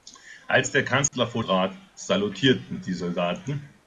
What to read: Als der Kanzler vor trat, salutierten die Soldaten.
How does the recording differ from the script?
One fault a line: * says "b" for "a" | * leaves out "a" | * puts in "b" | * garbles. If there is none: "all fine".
all fine